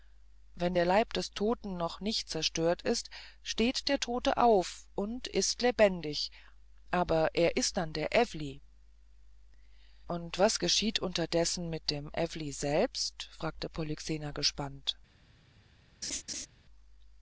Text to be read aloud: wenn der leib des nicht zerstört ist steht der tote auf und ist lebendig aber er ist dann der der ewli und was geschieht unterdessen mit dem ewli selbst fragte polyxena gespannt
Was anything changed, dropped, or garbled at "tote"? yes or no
no